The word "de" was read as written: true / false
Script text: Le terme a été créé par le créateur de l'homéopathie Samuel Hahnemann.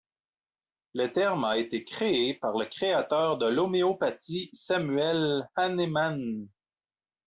true